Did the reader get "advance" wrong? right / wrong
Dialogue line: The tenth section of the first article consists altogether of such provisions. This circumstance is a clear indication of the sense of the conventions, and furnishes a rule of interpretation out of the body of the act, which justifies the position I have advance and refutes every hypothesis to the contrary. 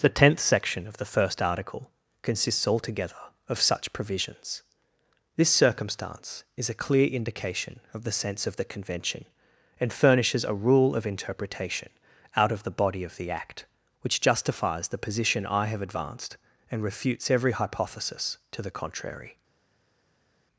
wrong